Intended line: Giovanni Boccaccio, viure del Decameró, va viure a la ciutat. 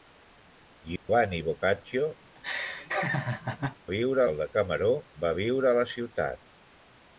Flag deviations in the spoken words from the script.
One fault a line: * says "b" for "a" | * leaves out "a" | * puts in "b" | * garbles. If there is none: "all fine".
all fine